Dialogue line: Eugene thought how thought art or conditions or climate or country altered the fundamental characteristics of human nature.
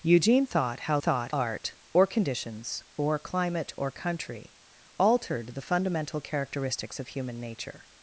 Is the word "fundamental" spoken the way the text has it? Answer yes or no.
yes